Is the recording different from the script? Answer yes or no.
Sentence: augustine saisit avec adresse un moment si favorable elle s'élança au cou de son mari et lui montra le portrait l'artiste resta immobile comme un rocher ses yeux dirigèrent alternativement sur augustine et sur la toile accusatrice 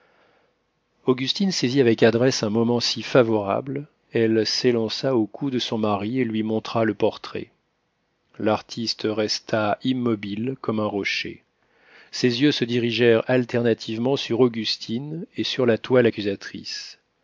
yes